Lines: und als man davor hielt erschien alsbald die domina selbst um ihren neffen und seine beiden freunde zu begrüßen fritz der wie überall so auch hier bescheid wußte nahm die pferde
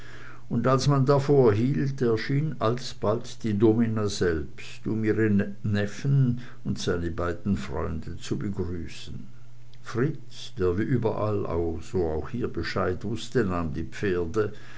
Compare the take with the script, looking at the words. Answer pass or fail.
pass